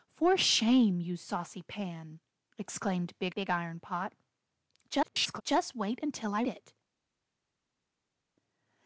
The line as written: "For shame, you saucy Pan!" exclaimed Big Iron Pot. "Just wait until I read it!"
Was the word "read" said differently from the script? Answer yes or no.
yes